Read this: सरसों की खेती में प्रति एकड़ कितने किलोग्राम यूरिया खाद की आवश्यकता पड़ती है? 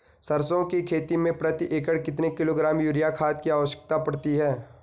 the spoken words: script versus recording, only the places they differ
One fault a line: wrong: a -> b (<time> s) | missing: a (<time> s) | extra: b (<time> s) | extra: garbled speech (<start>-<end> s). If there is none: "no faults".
no faults